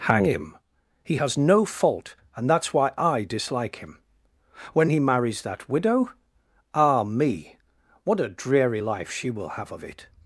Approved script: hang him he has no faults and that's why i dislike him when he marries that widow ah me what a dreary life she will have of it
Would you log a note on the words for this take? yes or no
yes